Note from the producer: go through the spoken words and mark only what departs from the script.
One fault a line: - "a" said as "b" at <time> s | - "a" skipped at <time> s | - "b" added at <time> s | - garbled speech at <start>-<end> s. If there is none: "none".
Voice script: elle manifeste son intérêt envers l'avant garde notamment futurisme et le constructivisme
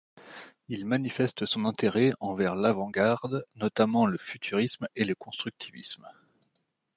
- "elle" said as "il" at 0.7 s
- "le" added at 4.1 s